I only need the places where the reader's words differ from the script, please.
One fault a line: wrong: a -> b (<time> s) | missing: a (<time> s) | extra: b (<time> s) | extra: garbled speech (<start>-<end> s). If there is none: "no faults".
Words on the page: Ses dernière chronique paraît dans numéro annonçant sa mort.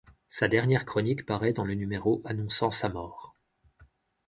wrong: Ses -> Sa (0.3 s)
extra: le (1.6 s)